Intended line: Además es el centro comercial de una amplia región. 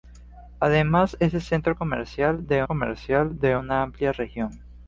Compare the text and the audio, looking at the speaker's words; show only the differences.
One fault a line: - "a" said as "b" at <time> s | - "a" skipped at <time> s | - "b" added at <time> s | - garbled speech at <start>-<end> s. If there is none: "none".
- "comercial de" added at 2.6 s